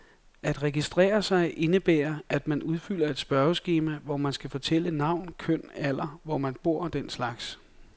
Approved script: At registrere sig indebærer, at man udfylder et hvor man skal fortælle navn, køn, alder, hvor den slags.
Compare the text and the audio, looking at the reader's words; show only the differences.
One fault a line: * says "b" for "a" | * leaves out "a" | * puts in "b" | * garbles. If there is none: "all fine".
* puts in "spørgeskema"
* puts in "man bor og"